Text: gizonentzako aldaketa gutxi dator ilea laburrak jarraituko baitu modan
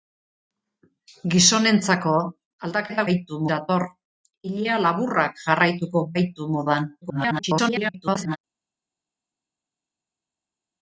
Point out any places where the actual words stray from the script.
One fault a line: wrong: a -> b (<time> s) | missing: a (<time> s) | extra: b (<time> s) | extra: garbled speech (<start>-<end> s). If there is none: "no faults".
wrong: gutxi -> baitu (3.1 s)
extra: garbled speech (7.0-8.4 s)